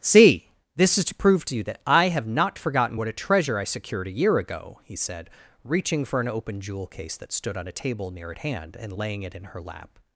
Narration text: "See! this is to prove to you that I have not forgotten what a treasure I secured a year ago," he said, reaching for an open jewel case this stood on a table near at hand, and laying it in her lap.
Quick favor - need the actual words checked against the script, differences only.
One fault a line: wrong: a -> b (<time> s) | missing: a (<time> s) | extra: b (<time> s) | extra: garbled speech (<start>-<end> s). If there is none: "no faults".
wrong: this -> that (7.2 s)